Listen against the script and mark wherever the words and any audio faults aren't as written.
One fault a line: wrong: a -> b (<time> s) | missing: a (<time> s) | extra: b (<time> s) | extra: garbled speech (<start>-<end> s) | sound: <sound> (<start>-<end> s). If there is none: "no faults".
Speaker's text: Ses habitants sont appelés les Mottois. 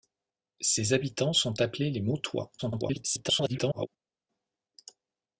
extra: garbled speech (2.6-3.9 s)